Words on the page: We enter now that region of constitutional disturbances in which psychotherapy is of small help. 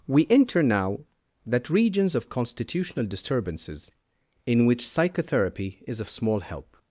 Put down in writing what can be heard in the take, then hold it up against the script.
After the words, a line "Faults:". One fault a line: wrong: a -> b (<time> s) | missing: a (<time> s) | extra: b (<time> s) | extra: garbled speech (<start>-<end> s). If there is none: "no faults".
We enter now that regions of constitutional disturbances in which psychotherapy is of small help.
Faults:
wrong: region -> regions (1.7 s)